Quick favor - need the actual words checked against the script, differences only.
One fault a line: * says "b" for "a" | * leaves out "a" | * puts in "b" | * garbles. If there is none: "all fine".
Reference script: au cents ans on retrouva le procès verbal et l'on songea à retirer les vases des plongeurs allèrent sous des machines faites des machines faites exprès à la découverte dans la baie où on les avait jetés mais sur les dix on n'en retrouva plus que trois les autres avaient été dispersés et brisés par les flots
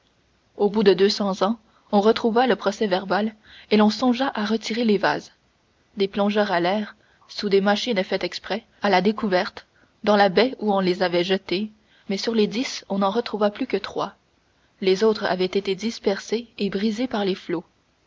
* puts in "bout de deux"
* leaves out "des machines faites"